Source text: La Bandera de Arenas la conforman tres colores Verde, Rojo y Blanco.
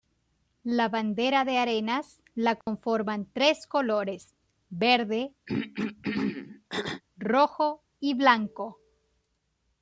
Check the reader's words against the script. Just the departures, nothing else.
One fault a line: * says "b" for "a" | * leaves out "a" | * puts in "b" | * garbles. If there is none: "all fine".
all fine